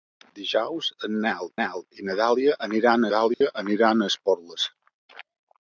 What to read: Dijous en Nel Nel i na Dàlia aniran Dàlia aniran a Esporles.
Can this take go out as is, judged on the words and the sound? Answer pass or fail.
fail